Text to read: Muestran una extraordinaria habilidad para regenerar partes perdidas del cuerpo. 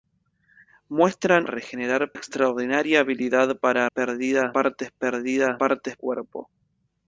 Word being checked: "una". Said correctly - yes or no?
no